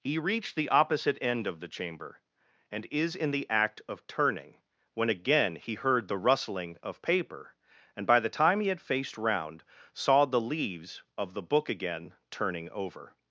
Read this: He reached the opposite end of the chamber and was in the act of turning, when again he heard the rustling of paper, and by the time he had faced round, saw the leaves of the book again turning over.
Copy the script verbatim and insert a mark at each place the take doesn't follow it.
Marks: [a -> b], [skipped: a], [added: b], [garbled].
He reached the opposite end of the chamber and [was -> is] in the act of turning, when again he heard the rustling of paper, and by the time he had faced round, saw the leaves of the book again turning over.